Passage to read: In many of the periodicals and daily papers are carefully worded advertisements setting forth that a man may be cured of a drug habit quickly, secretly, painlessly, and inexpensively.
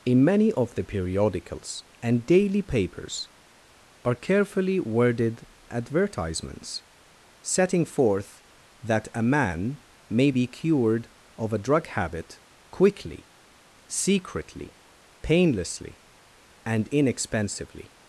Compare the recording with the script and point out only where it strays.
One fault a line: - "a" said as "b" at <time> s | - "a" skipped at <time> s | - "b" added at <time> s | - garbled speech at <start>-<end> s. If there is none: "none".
none